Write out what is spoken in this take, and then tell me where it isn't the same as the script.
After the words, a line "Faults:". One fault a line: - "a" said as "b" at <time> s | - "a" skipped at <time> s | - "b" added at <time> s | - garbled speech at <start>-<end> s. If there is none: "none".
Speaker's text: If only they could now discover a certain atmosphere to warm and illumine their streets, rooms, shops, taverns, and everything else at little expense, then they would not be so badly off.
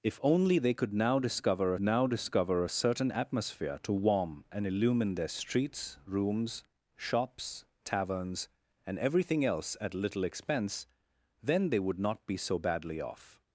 If only they could now discover now discover a certain atmosphere to warm and illumine their streets, rooms, shops, taverns, and everything else at little expense, then they would not be so badly off.
Faults:
- "now discover" added at 1.8 s